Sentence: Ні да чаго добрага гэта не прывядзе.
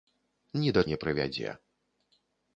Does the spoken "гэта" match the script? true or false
false